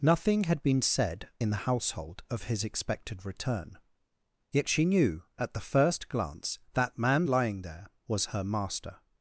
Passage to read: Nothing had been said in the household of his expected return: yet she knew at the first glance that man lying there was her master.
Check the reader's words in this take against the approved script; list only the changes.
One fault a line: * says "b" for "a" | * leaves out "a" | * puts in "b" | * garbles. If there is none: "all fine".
all fine